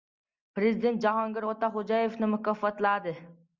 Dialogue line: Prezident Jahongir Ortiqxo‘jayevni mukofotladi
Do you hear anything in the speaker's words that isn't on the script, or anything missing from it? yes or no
no